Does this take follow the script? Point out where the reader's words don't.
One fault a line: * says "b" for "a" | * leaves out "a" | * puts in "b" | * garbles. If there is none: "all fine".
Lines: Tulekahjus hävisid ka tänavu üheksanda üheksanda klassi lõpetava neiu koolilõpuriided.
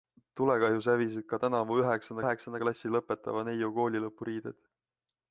all fine